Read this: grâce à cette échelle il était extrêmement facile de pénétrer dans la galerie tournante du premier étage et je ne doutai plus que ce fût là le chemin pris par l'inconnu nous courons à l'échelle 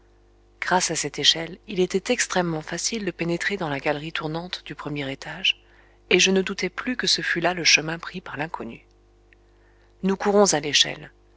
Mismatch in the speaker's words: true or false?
false